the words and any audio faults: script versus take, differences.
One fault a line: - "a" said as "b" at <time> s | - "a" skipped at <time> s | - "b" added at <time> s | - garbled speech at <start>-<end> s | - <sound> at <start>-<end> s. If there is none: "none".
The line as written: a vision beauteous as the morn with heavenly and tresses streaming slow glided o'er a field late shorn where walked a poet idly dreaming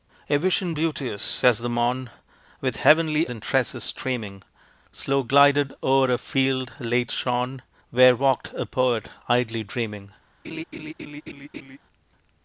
- laugh at 10.4-11.8 s